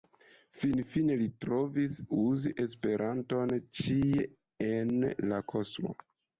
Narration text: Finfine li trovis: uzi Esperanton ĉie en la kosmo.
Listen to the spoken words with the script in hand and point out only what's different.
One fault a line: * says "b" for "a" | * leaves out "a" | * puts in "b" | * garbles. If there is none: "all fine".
all fine